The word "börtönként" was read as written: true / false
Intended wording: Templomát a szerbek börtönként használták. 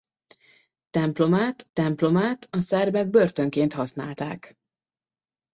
true